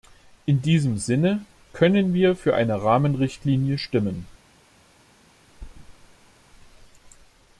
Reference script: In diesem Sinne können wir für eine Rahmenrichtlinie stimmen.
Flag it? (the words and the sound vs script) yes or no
yes